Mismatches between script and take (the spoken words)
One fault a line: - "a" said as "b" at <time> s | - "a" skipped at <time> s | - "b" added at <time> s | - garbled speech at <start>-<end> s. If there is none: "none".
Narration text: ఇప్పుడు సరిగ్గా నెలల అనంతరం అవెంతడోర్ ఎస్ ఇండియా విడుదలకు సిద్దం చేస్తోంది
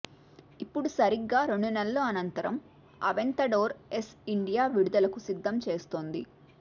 - "రెండు" added at 1.4 s